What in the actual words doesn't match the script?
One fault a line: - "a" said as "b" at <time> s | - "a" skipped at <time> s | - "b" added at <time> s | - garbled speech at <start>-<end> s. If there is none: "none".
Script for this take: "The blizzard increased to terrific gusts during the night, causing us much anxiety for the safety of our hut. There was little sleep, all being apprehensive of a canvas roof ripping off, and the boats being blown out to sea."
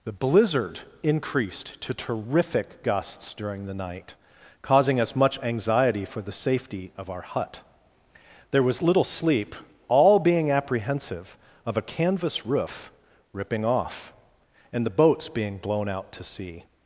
none